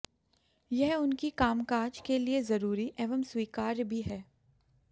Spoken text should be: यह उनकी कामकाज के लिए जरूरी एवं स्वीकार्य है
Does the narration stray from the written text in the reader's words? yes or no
yes